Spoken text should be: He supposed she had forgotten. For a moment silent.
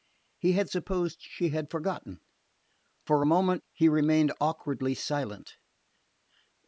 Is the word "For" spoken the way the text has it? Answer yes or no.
yes